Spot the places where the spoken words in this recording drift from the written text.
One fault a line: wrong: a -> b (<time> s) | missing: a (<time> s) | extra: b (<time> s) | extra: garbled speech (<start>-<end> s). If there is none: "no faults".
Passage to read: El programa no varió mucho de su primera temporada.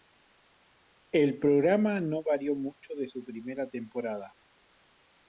no faults